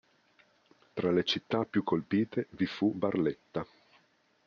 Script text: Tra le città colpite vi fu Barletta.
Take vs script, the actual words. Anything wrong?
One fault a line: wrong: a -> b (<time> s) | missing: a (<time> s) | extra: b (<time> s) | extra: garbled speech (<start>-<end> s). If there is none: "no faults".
extra: più (1.6 s)